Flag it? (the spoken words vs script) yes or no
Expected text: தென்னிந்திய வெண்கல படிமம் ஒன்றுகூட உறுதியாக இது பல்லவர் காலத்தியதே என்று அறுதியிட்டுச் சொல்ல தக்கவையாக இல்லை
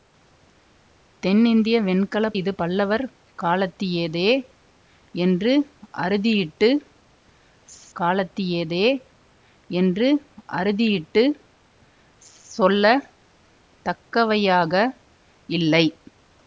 yes